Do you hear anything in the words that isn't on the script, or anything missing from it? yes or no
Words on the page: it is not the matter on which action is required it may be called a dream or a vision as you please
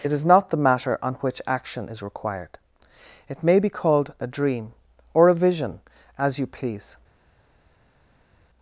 no